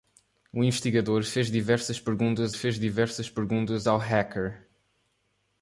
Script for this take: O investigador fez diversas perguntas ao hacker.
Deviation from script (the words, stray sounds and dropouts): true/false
true